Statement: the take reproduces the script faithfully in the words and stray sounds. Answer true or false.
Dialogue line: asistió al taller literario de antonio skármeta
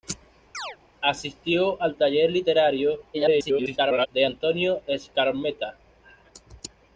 false